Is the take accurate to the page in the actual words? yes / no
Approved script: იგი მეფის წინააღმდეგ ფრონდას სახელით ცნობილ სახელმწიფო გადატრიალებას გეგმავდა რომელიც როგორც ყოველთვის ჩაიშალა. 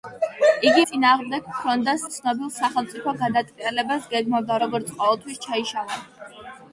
no